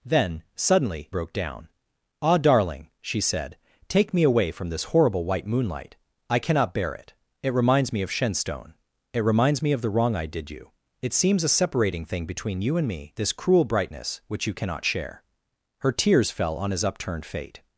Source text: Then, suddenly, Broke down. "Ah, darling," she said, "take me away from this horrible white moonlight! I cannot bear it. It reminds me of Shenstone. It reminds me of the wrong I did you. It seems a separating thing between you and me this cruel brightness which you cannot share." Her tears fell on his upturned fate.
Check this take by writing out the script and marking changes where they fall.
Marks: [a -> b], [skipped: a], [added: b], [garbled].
Then, suddenly, Broke down. "Ah, darling," she said, "take me away from this horrible white moonlight! I cannot bear it. It reminds me of Shenstone. It reminds me of the wrong I did you. It seems a separating thing between you and me this cruel brightness which you cannot share." Her tears fell on his upturned fate.